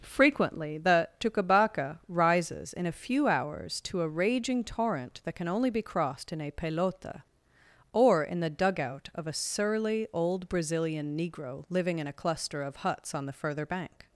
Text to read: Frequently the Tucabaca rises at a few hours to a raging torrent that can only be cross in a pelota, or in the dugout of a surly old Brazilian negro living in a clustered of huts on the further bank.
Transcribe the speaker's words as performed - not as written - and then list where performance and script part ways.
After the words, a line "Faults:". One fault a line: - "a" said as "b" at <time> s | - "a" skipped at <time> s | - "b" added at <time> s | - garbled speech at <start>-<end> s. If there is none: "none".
Frequently the Tucabaca rises in a few hours to a raging torrent that can only be crossed in a pelota, or in the dugout of a surly old Brazilian negro living in a cluster of huts on the further bank.
Faults:
- "at" said as "in" at 2.7 s
- "cross" said as "crossed" at 5.8 s
- "clustered" said as "cluster" at 12.1 s